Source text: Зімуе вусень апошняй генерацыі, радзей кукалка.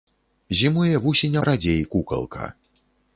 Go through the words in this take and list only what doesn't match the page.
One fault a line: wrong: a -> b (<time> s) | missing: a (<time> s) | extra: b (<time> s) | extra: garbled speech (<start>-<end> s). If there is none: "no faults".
missing: апошняй генерацыі (1.4 s)